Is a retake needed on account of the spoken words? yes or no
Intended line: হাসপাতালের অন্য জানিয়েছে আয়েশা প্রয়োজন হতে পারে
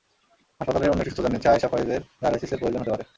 yes